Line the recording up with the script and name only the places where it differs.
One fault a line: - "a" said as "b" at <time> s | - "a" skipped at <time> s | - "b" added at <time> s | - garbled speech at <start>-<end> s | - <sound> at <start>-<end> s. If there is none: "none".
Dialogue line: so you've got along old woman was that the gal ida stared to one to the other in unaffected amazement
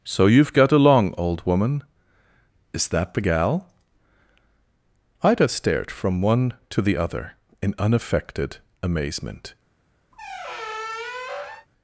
- "was" said as "is" at 2.7 s
- "to" said as "from" at 5.9 s
- squeak at 10.1-11.7 s